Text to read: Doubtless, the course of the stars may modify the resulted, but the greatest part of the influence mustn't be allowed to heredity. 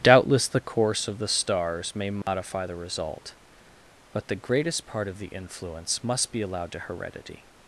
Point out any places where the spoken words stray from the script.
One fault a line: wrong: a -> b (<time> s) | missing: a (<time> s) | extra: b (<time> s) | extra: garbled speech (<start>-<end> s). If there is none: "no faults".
wrong: resulted -> result (2.7 s)
wrong: mustn't -> must (6.0 s)